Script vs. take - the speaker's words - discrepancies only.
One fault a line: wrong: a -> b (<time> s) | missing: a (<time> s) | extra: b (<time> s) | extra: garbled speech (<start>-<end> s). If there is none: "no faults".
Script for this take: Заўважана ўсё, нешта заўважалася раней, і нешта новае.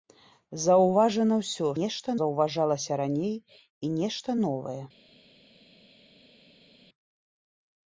no faults